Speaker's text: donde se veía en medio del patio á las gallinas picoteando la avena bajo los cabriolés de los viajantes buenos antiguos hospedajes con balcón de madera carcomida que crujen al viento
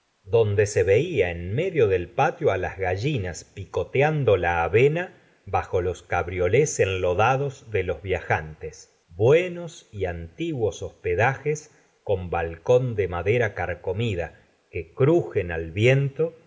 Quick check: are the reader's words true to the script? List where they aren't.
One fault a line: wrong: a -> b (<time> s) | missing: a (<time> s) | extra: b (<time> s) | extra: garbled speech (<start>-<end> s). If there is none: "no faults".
extra: enlodados (6.8 s)
extra: y (9.9 s)